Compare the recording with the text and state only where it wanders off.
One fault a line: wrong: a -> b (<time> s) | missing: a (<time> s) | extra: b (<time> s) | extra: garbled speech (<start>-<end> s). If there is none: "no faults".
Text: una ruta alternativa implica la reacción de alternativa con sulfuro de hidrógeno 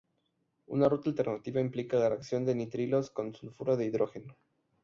wrong: alternativa -> nitrilos (2.5 s)